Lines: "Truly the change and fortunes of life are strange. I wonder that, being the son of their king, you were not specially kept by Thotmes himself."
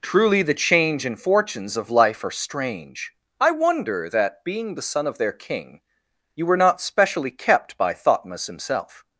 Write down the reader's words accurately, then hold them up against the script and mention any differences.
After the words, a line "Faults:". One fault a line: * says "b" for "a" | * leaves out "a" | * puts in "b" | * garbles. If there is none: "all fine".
"Truly the change and fortunes of life are strange. I wonder that, being the son of their king, you were not specially kept by Thotmes himself."
Faults:
all fine